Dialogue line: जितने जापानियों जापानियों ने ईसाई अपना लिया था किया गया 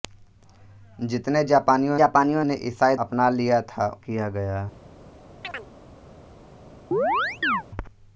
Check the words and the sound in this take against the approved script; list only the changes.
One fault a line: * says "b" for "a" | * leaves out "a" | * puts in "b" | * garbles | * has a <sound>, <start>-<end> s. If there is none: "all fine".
* has a chirp, 5.4-5.7 s
* has a chirp, 6.9-7.6 s